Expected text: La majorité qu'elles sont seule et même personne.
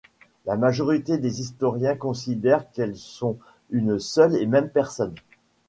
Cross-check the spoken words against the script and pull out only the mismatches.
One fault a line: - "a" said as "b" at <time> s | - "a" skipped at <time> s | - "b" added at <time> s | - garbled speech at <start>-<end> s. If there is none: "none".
- "des historiens considèrent" added at 1.2 s
- "une" added at 3.7 s